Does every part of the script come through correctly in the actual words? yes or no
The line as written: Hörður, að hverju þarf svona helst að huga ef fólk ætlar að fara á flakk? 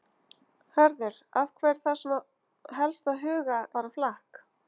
no